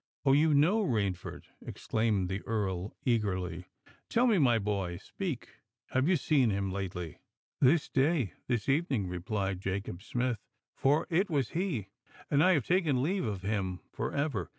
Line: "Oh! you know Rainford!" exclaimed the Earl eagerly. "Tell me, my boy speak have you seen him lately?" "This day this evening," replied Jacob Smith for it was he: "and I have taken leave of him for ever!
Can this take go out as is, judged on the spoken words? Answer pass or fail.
pass